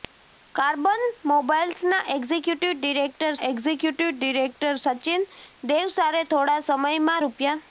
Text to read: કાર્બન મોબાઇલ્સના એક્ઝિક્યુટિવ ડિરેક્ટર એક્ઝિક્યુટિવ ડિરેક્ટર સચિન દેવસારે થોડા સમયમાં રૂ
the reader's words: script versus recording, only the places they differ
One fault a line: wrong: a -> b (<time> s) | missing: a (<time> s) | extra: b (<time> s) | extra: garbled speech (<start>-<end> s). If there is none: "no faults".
no faults